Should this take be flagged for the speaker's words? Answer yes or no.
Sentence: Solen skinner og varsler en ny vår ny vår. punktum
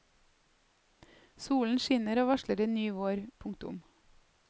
yes